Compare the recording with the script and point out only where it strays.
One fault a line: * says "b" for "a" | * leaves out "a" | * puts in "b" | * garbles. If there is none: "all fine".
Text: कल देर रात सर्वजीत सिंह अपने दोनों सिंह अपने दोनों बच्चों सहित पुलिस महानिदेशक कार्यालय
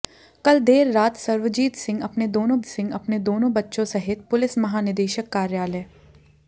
all fine